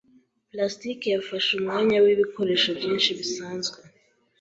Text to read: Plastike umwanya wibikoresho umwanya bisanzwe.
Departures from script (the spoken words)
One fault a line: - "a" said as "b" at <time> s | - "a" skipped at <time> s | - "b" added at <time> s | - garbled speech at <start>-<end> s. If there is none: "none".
- "yafashe" added at 1.1 s
- "umwanya" said as "byinshi" at 2.8 s